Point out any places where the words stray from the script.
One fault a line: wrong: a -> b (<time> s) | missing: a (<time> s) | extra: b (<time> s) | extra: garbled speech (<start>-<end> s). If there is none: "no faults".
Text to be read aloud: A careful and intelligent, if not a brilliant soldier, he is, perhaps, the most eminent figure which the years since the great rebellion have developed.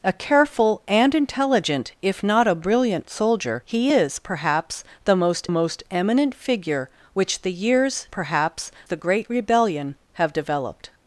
extra: most (5.5 s)
wrong: since -> perhaps (8.1 s)